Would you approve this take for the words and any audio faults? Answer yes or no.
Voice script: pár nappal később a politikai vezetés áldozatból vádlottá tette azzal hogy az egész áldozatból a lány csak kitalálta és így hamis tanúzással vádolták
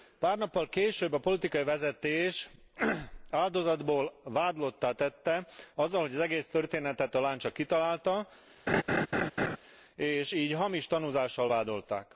no